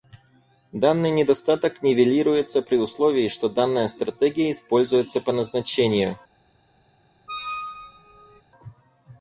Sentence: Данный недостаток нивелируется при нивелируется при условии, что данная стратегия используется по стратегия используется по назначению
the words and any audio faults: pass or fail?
fail